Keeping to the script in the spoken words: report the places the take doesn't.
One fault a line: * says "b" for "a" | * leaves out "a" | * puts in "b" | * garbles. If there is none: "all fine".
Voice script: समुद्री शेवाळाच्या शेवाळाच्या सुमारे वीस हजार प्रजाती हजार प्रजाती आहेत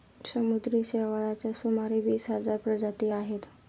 * leaves out "शेवाळाच्या"
* leaves out "हजार प्रजाती"